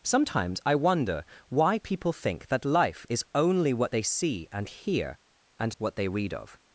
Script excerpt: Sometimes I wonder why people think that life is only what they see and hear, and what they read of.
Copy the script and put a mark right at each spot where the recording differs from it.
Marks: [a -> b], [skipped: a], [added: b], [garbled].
Sometimes I wonder why people think that life is only what they see and hear, and what they read of.